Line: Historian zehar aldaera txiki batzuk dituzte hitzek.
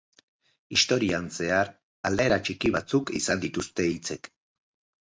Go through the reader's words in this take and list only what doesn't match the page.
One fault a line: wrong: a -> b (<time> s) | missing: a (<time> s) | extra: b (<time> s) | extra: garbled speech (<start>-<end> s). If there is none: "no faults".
extra: izan (3.2 s)